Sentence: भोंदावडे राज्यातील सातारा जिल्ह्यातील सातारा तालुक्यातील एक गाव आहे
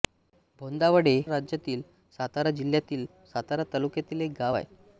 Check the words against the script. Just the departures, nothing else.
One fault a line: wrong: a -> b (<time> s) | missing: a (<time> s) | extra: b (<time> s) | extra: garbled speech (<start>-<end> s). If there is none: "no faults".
no faults